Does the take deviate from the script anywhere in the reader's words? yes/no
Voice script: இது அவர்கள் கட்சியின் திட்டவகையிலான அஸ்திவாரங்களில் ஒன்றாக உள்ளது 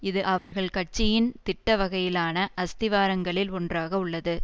no